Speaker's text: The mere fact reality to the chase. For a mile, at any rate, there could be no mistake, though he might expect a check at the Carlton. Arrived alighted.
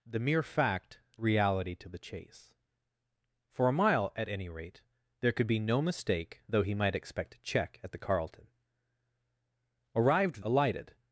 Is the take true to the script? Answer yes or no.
yes